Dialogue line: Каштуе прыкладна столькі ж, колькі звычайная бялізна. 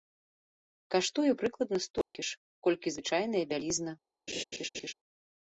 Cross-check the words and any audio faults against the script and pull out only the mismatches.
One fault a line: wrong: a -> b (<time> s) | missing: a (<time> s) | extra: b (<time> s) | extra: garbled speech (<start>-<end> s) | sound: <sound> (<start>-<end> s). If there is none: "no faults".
sound: dropout (2.0-2.1 s)
sound: laugh (4.3-4.9 s)